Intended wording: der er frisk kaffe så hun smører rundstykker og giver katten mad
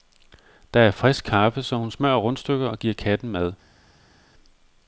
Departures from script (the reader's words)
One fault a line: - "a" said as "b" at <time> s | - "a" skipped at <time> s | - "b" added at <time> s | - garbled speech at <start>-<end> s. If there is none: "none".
none